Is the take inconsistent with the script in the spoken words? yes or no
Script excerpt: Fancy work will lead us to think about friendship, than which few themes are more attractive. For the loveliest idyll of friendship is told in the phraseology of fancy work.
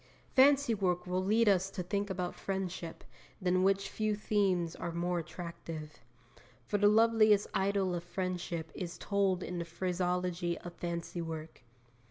no